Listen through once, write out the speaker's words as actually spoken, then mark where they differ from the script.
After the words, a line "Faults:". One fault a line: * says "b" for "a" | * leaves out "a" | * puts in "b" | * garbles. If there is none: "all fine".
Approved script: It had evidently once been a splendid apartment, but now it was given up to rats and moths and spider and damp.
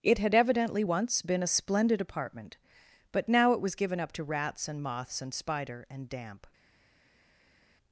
It had evidently once been a splendid apartment, but now it was given up to rats and moths and spider and damp.
Faults:
all fine